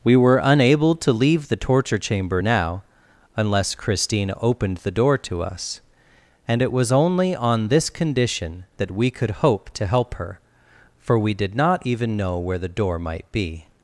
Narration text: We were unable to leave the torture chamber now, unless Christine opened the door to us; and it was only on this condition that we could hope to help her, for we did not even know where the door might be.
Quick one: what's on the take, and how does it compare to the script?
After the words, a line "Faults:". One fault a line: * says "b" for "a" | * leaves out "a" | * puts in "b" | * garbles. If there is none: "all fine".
We were unable to leave the torture chamber now, unless Christine opened the door to us; and it was only on this condition that we could hope to help her, for we did not even know where the door might be.
Faults:
all fine